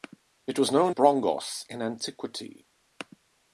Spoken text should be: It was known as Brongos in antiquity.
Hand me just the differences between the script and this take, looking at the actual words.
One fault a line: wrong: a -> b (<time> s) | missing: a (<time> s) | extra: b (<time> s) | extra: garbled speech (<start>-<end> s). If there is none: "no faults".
missing: as (0.9 s)